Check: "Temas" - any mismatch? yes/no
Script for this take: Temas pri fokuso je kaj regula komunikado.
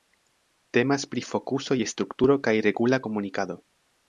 no